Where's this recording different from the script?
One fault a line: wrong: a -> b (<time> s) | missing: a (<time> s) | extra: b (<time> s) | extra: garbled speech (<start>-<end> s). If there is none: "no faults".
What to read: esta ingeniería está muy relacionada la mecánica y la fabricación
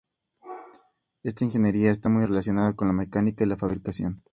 extra: con (2.7 s)